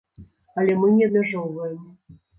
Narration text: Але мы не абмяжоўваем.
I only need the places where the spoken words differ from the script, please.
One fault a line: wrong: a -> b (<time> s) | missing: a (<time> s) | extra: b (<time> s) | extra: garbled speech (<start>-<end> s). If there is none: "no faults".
no faults